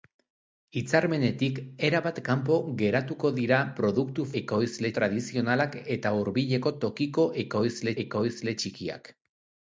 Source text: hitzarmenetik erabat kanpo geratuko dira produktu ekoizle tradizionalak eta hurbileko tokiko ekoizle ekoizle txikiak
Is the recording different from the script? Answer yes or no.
no